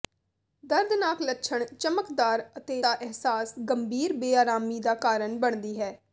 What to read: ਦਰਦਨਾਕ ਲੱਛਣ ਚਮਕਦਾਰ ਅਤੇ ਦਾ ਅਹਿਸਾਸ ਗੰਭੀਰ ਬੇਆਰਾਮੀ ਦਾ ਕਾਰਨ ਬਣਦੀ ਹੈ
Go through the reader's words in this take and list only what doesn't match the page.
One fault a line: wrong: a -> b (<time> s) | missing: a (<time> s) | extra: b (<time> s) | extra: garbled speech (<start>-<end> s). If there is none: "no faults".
no faults